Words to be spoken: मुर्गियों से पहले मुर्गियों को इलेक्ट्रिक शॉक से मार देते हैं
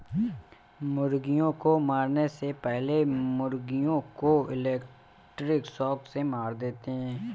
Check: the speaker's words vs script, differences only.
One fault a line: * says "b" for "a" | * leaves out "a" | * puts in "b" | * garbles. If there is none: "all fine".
* puts in "को मारने"